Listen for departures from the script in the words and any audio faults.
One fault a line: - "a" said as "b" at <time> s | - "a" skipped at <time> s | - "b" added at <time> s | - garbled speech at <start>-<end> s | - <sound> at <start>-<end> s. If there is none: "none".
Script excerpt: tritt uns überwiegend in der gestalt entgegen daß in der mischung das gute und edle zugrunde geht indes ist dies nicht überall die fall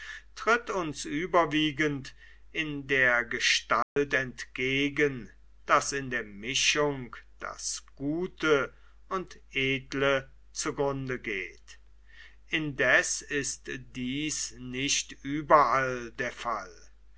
- dropout at 3.8-4.0 s
- "die" said as "der" at 16.1 s